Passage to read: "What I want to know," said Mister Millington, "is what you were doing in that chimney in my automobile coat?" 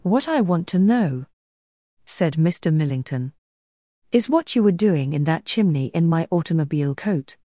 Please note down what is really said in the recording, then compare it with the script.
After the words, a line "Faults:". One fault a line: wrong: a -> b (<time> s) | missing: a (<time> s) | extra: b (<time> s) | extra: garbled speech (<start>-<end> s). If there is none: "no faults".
"What I want to know," said Mister Millington, "is what you were doing in that chimney in my automobile coat?"
Faults:
no faults